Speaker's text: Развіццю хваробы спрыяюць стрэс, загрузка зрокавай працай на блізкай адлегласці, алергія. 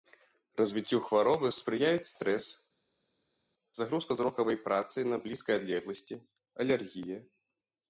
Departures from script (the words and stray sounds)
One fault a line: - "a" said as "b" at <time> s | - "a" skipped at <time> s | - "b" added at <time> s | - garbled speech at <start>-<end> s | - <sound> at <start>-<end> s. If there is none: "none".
none